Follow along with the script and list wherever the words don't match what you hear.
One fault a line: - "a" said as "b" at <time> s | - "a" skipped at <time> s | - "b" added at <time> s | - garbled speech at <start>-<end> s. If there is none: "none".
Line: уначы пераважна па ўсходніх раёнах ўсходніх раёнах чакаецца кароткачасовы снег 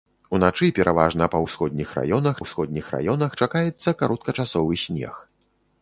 none